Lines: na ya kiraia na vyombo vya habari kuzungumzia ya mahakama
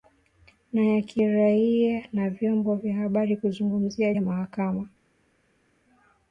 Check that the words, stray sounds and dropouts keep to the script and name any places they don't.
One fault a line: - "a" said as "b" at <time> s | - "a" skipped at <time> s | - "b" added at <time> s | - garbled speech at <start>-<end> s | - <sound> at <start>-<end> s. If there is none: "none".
none